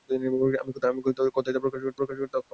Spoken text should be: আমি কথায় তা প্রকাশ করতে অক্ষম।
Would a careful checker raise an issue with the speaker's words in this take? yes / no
yes